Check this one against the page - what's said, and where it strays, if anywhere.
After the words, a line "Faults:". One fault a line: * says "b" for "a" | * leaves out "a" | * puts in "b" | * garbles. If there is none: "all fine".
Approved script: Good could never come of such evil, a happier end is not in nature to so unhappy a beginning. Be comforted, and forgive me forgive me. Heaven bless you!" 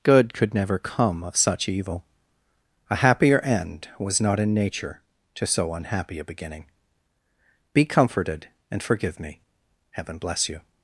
Good could never come of such evil, a happier end was not in nature to so unhappy a beginning. Be comforted, and forgive me. Heaven bless you!"
Faults:
* says "was" for "is"
* leaves out "forgive me"